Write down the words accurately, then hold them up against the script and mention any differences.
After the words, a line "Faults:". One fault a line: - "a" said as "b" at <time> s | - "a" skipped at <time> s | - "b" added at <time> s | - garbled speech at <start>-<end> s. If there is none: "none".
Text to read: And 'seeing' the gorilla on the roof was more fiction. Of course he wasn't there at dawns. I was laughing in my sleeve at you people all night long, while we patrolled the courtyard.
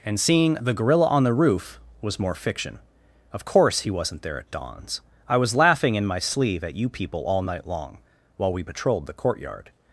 And 'seeing' the gorilla on the roof was more fiction. Of course he wasn't there at dawns. I was laughing in my sleeve at you people all night long, while we patrolled the courtyard.
Faults:
none